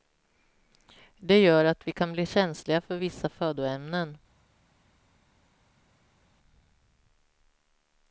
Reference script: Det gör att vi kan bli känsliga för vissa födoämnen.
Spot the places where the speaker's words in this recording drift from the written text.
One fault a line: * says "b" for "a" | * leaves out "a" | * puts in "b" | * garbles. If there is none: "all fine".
all fine